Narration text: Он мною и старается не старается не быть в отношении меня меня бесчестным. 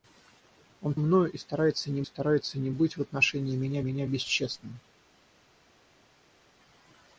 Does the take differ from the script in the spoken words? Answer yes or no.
no